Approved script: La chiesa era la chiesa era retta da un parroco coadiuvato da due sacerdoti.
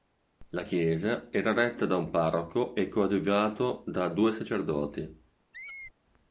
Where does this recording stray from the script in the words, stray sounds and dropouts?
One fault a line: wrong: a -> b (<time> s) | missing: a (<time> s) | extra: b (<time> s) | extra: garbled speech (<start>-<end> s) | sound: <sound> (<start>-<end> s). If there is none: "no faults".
missing: la chiesa era (1.5 s)
extra: e (2.7 s)
sound: squeak (5.5-5.9 s)